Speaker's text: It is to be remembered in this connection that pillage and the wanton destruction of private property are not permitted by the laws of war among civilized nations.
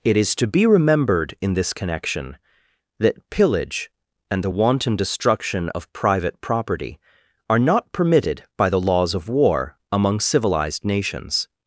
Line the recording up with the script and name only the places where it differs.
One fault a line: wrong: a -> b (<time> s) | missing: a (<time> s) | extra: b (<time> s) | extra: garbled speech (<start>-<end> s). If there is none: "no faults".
no faults